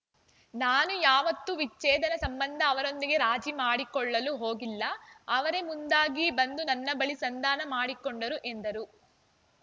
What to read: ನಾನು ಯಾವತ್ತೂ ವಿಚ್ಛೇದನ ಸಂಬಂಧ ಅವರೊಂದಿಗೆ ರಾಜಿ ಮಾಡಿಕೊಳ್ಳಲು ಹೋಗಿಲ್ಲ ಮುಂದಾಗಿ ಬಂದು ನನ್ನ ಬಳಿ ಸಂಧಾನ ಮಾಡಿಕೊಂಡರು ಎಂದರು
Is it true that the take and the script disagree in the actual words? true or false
true